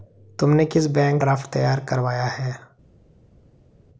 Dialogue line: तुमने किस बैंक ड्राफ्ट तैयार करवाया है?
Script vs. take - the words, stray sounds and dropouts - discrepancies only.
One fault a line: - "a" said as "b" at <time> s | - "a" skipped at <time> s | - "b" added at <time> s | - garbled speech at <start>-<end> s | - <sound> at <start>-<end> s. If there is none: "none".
none